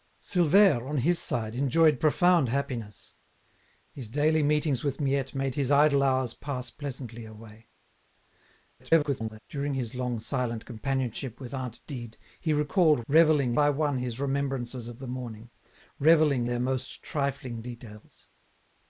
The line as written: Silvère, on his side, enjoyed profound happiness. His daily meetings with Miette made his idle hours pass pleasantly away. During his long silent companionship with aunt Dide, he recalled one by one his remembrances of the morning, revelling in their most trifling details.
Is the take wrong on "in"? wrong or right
wrong